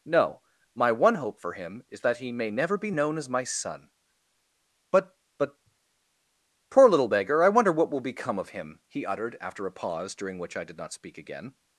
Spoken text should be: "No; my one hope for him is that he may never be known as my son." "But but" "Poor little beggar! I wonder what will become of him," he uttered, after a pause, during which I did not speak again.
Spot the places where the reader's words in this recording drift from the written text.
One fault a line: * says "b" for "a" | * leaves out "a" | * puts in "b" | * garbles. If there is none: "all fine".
all fine